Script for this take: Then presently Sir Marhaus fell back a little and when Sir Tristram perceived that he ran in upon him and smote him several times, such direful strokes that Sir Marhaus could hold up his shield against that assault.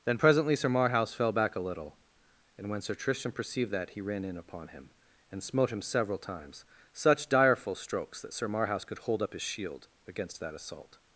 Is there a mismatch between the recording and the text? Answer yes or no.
no